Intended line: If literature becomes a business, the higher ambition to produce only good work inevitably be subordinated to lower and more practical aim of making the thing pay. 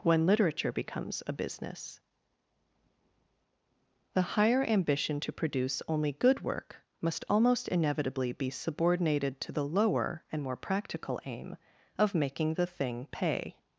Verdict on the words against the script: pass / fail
fail